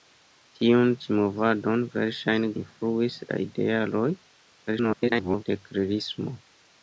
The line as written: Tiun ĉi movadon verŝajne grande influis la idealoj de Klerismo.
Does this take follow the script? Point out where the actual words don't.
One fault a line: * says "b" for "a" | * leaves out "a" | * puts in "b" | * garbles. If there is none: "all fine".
* leaves out "grande"
* garbles